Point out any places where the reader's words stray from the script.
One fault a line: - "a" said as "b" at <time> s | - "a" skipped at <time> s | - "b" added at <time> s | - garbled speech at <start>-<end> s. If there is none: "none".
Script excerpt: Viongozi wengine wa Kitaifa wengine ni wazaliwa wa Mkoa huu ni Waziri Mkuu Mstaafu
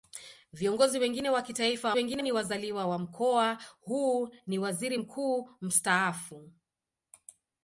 none